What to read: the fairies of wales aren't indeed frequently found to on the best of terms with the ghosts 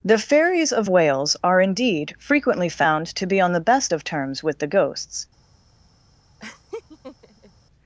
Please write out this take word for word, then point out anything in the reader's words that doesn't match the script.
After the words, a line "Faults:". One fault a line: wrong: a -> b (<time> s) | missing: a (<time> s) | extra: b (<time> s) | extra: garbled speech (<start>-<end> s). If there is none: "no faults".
the fairies of wales are indeed frequently found to be on the best of terms with the ghosts
Faults:
wrong: aren't -> are (1.4 s)
extra: be (3.3 s)